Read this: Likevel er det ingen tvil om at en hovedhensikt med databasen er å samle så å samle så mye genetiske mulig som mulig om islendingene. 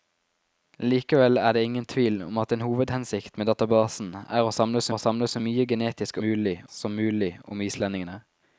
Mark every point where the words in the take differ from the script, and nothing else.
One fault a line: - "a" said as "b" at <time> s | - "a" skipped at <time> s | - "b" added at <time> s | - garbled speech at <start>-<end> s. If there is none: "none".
none